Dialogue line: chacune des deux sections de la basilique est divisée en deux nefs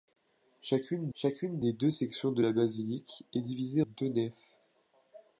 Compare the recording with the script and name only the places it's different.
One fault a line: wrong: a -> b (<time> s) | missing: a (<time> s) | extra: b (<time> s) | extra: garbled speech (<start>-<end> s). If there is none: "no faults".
extra: chacune (1.1 s)
missing: en (3.8 s)